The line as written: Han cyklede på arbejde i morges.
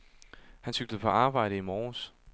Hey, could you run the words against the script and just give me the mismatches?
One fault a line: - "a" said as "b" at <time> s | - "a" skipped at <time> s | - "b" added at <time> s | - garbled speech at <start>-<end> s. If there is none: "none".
none